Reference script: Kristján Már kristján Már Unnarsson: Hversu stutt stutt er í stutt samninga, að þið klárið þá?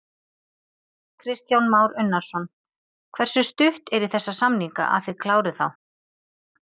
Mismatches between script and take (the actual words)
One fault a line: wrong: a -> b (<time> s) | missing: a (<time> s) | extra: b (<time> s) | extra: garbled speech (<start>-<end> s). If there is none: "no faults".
missing: kristján Már (1.9 s)
missing: stutt (3.9 s)
wrong: stutt -> þessa (4.2 s)